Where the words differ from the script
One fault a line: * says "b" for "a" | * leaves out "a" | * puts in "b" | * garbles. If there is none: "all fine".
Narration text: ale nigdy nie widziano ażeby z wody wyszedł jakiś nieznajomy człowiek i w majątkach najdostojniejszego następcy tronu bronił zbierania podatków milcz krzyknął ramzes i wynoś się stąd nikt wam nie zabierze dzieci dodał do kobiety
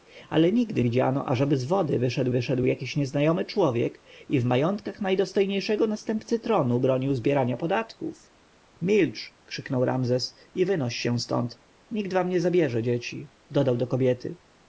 * leaves out "nie"
* puts in "wyszedł"